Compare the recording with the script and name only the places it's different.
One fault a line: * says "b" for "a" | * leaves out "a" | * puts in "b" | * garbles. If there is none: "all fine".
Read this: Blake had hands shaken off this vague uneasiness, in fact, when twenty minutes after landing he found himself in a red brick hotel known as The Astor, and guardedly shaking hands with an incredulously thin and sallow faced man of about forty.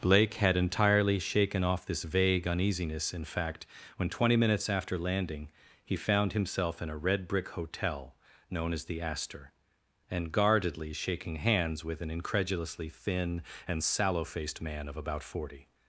* says "entirely" for "hands"